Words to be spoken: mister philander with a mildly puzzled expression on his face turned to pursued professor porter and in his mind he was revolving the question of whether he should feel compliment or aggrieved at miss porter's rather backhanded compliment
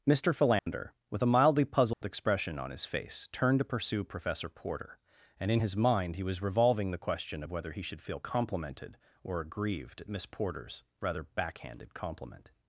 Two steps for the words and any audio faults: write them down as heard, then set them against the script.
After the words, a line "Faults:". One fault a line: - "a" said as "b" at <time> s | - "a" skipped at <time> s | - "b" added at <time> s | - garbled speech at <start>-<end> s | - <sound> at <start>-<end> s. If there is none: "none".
mister philander with a mildly puzzled expression on his face turned to pursue professor porter and in his mind he was revolving the question of whether he should feel complimented or aggrieved at miss porter's rather backhanded compliment
Faults:
- dropout at 0.6-0.7 s
- dropout at 1.9-2.0 s
- "pursued" said as "pursue" at 3.6 s
- "compliment" said as "complimented" at 8.2 s